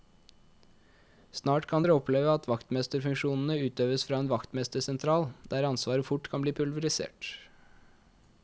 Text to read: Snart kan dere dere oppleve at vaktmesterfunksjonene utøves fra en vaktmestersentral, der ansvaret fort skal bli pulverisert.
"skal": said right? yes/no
no